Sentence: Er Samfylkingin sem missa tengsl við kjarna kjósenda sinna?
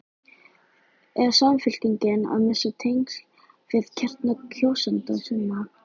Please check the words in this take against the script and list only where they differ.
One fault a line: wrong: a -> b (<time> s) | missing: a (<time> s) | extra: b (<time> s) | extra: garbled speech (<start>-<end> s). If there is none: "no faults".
wrong: sem -> að (2.4 s)